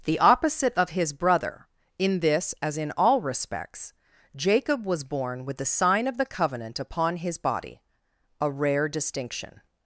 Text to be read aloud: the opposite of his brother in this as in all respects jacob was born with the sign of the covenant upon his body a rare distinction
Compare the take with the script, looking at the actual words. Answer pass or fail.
pass